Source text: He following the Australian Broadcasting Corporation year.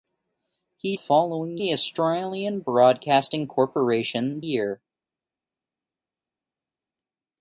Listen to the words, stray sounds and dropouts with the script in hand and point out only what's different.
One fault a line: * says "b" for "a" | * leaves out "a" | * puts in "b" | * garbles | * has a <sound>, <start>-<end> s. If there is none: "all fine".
all fine